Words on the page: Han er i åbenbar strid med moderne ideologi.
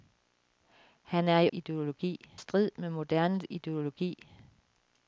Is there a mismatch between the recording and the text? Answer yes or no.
yes